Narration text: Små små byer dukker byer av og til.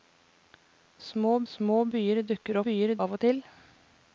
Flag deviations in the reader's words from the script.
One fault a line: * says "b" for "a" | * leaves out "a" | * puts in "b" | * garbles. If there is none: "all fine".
all fine